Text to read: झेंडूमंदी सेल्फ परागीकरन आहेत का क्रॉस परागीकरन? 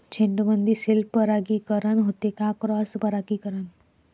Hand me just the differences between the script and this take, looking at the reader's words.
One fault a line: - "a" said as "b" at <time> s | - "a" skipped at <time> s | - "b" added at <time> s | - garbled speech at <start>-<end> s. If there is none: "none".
- "आहेत" said as "होते" at 2.0 s